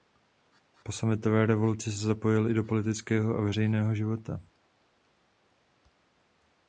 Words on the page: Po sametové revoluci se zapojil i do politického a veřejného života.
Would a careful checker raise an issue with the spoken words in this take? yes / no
no